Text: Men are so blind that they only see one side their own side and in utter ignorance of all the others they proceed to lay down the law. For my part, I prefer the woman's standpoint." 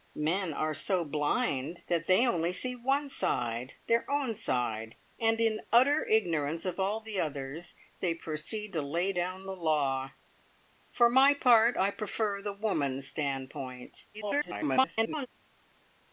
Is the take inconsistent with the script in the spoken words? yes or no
yes